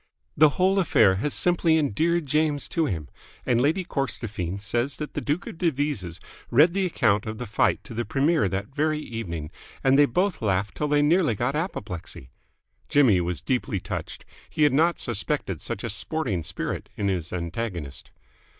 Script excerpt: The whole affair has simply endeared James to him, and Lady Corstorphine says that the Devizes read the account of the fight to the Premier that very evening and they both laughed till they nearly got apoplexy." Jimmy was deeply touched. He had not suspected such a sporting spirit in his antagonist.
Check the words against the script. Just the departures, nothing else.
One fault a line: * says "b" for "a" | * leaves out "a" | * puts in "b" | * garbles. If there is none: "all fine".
* puts in "Duke of"